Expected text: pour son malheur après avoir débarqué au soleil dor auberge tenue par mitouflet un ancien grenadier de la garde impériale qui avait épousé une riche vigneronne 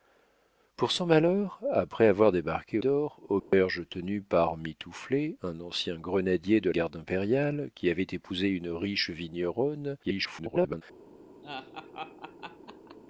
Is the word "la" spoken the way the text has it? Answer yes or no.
no